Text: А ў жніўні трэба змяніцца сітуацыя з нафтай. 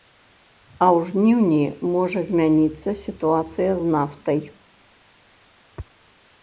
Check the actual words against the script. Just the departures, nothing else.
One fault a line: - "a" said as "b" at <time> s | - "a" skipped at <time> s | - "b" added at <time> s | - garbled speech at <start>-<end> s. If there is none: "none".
- "трэба" said as "можа" at 1.9 s